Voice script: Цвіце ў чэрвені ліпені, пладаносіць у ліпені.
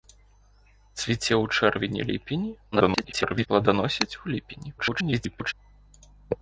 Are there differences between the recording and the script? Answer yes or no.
yes